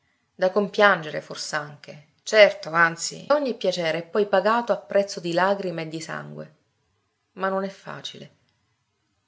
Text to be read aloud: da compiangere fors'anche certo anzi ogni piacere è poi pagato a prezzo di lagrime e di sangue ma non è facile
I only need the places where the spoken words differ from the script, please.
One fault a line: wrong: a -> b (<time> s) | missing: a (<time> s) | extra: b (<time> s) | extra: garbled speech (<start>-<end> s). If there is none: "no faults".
no faults